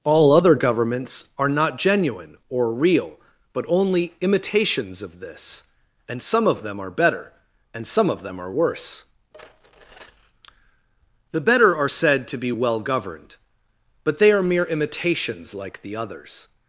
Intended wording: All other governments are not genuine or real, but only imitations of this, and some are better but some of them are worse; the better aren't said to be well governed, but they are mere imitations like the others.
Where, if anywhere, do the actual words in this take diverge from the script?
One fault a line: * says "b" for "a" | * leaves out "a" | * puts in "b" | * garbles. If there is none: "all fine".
* puts in "of them"
* says "and" for "but"
* says "are" for "aren't"